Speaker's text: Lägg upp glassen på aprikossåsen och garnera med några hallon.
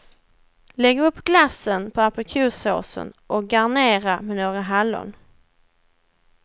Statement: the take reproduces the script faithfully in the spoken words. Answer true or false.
true